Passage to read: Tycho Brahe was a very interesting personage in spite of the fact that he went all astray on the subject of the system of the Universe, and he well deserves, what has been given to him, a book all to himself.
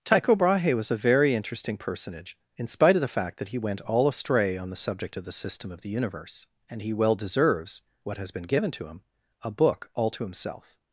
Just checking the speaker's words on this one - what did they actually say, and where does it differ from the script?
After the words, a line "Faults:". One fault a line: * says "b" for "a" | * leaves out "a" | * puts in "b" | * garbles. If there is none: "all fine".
Tycho Brahe was a very interesting personage in spite of the fact that he went all astray on the subject of the system of the Universe, and he well deserves, what has been given to him, a book all to himself.
Faults:
all fine